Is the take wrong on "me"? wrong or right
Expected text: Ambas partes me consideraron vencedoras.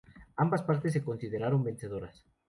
wrong